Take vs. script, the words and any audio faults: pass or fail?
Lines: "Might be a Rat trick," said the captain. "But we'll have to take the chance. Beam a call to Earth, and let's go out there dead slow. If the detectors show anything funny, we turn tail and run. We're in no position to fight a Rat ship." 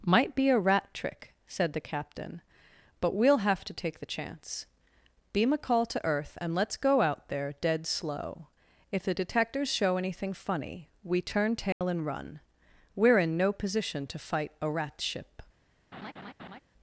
fail